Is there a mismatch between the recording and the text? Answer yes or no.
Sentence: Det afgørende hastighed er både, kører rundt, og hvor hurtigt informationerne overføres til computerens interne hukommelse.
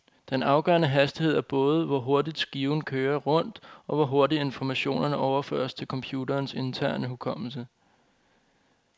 yes